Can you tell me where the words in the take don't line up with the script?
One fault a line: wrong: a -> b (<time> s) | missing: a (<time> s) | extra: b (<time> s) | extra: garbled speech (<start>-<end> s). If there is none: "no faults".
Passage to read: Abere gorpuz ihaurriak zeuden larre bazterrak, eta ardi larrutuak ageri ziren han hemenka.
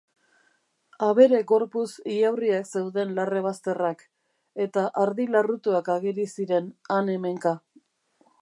no faults